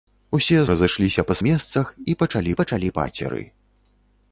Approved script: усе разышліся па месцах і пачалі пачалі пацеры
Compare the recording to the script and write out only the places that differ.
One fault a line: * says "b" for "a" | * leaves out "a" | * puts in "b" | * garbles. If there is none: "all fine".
all fine